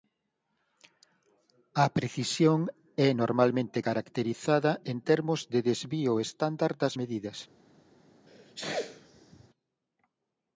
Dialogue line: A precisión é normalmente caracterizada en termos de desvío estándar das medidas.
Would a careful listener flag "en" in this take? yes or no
no